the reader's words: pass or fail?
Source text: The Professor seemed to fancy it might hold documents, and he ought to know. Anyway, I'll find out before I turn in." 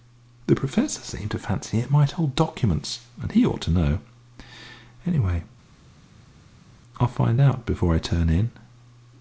pass